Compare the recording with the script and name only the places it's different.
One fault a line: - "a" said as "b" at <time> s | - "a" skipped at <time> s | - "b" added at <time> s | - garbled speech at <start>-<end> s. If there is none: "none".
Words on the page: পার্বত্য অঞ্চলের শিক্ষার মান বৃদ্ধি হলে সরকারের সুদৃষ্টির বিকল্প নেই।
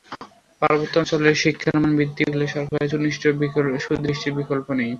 none